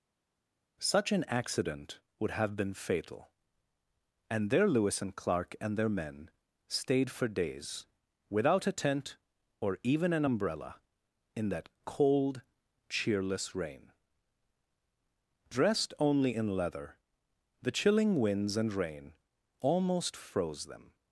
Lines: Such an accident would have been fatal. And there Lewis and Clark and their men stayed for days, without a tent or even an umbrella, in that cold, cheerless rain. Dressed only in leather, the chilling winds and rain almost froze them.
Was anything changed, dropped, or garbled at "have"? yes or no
no